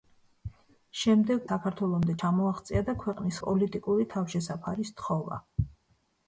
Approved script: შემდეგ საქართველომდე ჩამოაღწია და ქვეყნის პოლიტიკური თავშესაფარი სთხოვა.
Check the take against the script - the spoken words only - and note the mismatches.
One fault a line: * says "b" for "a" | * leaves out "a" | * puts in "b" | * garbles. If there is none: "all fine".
all fine